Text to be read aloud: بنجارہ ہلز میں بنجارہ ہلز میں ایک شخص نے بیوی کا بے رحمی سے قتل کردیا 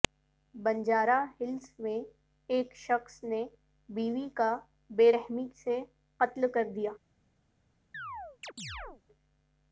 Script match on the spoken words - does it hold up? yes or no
no